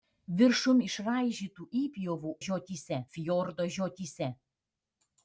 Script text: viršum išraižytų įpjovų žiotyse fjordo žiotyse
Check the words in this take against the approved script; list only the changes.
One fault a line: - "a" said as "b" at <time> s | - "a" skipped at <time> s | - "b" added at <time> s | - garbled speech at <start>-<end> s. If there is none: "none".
none